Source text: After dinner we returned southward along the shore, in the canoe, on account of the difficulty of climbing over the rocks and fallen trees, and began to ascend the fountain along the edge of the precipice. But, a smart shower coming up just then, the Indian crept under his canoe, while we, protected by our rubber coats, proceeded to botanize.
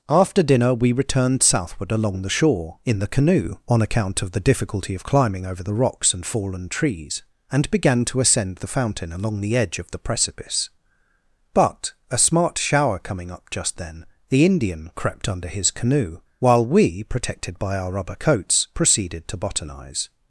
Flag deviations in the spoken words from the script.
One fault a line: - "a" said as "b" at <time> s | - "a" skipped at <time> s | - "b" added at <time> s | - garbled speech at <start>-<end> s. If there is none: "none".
none